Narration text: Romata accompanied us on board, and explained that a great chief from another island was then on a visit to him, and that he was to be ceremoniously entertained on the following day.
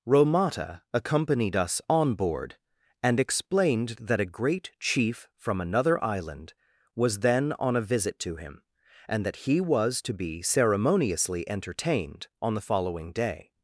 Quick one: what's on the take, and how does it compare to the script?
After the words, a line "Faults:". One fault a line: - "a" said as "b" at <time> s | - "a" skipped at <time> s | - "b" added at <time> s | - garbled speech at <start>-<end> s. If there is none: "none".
Romata accompanied us on board, and explained that a great chief from another island was then on a visit to him, and that he was to be ceremoniously entertained on the following day.
Faults:
none